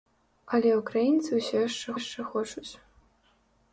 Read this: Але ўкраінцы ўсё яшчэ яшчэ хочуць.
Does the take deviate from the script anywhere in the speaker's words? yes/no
no